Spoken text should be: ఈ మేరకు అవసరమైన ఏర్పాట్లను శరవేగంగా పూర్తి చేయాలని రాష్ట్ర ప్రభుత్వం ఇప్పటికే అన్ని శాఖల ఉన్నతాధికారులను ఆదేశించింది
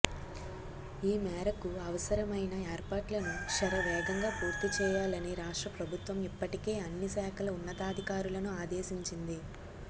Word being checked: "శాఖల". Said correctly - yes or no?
yes